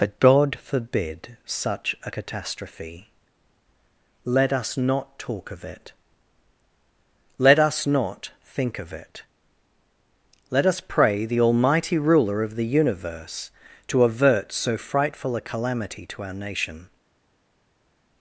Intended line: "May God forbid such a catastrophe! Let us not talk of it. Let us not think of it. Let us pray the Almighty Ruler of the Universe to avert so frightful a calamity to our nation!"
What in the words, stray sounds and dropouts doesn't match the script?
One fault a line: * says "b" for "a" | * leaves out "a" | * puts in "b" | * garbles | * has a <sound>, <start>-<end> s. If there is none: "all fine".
* says "But" for "May"